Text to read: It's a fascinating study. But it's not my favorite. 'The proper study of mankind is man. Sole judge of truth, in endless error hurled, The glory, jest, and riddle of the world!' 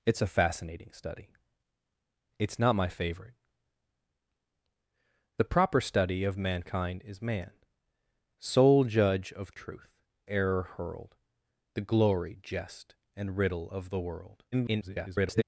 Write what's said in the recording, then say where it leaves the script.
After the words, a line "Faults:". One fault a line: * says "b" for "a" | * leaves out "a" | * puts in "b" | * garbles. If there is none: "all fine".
It's a fascinating study. It's not my favorite. 'The proper study of mankind is man. Sole judge of truth, error hurled, The glory, jest, and riddle of the world!' [garbled]
Faults:
* leaves out "But"
* leaves out "in endless"
* garbles